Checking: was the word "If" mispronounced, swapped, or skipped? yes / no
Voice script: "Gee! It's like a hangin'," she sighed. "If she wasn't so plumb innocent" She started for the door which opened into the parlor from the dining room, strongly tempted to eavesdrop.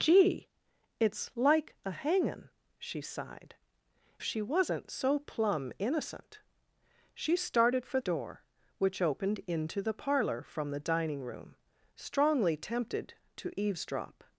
yes